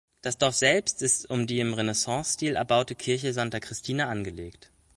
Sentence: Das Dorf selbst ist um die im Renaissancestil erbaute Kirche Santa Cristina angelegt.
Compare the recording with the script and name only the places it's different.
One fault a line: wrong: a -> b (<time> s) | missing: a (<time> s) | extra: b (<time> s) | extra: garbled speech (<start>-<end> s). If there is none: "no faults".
no faults